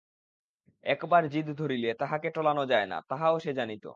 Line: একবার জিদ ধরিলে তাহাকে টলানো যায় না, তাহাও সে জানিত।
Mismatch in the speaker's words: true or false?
false